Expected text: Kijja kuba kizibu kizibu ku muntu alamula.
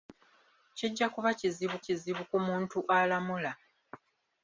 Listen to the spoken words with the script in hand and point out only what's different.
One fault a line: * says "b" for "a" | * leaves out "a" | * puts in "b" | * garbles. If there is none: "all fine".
all fine